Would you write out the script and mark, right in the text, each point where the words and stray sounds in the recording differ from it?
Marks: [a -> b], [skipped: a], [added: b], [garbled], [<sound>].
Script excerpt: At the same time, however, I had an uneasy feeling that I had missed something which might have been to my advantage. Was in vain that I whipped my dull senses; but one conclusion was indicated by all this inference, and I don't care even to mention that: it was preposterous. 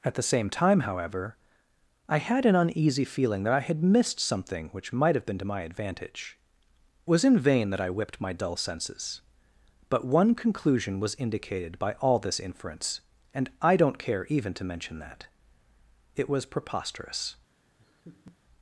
At the same time, however, I had an uneasy feeling that I had missed something which might have been to my advantage. Was in vain that I whipped my dull senses; but one conclusion was indicated by all this inference, and I don't care even to mention that: it was preposterous. [laugh]